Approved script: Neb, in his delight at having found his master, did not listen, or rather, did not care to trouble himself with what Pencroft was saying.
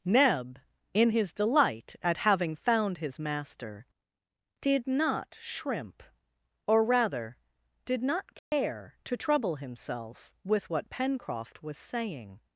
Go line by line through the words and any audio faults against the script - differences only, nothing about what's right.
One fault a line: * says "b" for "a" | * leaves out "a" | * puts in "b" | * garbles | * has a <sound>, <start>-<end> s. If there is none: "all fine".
* says "shrimp" for "listen"
* has a dropout, 8.4-8.5 s